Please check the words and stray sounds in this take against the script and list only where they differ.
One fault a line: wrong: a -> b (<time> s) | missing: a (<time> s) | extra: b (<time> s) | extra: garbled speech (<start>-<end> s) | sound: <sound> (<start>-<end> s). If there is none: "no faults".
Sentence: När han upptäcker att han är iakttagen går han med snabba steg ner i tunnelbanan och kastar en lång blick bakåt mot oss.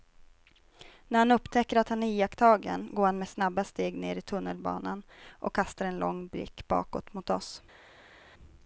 no faults